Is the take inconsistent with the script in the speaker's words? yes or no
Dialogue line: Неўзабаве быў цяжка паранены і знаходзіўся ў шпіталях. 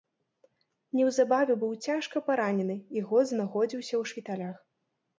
yes